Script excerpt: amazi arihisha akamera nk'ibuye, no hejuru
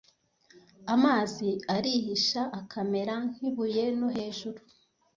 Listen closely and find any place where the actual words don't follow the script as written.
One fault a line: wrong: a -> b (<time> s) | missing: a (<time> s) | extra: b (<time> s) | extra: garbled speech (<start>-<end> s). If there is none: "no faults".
no faults